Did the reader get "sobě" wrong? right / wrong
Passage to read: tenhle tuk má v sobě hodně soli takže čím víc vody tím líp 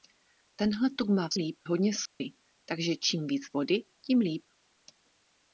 wrong